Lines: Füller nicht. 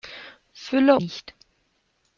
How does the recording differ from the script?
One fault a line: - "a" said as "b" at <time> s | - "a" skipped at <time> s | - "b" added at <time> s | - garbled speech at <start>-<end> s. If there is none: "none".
none